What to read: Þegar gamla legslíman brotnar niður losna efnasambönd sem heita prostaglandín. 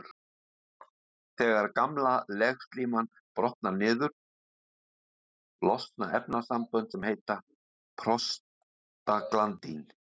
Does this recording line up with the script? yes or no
yes